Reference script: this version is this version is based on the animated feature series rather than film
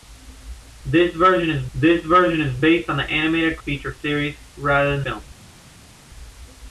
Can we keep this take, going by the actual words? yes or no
yes